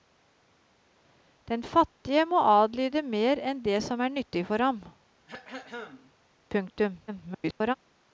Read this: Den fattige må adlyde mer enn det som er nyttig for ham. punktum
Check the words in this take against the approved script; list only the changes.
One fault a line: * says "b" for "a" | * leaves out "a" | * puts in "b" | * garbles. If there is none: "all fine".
* garbles